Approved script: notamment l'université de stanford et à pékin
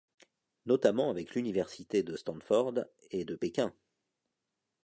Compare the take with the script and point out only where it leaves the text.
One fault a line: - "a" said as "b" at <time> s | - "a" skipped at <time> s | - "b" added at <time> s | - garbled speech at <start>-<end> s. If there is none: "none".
- "avec" added at 1.1 s
- "à" said as "de" at 3.3 s